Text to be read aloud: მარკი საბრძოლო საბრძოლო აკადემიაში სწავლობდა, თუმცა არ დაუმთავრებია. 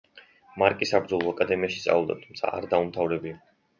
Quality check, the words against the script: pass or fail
fail